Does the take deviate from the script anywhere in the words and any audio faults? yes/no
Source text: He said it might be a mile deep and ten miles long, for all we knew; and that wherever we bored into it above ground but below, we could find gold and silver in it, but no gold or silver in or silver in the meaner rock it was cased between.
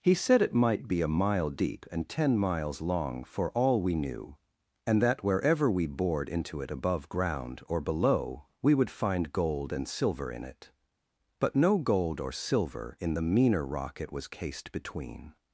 yes